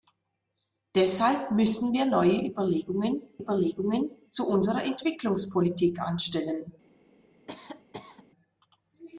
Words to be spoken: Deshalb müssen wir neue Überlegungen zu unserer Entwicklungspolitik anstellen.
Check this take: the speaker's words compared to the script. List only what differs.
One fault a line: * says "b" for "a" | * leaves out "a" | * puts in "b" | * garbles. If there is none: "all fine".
* puts in "Überlegungen"